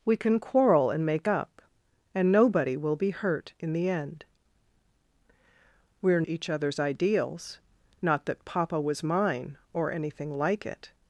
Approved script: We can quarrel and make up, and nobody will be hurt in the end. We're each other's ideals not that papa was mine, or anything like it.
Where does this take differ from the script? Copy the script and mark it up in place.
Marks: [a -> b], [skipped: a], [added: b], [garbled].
We can quarrel and make up, and nobody will be hurt in the end. We're each other's ideals not that papa was mine, or anything like it.